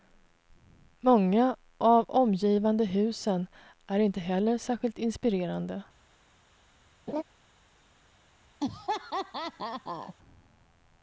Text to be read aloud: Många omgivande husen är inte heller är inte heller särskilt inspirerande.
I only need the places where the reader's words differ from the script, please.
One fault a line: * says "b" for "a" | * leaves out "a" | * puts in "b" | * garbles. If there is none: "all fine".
* puts in "av"
* leaves out "är inte heller"